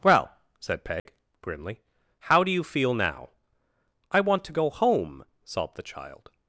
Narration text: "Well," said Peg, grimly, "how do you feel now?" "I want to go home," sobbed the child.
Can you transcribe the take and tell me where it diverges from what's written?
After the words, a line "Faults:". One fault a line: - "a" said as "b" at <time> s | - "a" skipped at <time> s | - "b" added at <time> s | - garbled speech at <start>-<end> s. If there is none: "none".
"Well," said Peg, grimly, "how do you feel now?" "I want to go home," sobbed the child.
Faults:
none